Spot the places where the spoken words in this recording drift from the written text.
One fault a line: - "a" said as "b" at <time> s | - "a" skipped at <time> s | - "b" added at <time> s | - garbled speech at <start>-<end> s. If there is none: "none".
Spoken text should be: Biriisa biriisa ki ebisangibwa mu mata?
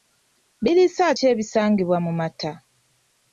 - "biriisa" skipped at 1.1 s